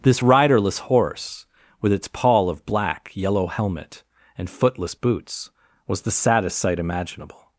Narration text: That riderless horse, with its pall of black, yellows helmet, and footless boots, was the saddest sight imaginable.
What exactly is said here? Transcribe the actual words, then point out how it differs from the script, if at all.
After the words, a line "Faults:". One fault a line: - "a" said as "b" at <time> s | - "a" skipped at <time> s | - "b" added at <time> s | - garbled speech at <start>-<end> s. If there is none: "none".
This riderless horse, with its pall of black, yellow helmet, and footless boots, was the saddest sight imaginable.
Faults:
- "That" said as "This" at 0.0 s
- "yellows" said as "yellow" at 3.1 s